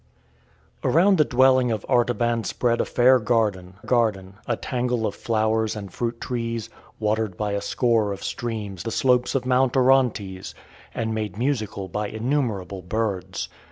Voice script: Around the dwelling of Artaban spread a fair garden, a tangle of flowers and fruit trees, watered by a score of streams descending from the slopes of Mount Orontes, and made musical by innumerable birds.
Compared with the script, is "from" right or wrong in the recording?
wrong